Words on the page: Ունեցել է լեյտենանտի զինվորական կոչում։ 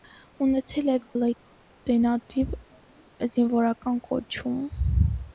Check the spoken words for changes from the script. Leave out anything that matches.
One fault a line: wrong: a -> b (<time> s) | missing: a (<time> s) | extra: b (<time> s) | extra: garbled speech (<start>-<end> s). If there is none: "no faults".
no faults